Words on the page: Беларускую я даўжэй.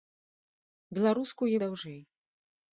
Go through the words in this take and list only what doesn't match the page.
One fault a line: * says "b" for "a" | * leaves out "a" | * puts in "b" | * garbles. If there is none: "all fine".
all fine